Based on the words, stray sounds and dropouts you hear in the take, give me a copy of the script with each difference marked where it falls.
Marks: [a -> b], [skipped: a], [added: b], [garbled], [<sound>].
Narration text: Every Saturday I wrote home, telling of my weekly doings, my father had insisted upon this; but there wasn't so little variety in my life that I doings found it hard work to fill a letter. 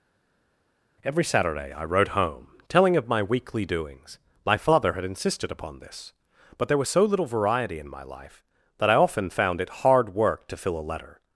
Every Saturday I wrote home, telling of my weekly doings, my father had insisted upon this; but there [wasn't -> was] so little variety in my life that I [doings -> often] found it hard work to fill a letter.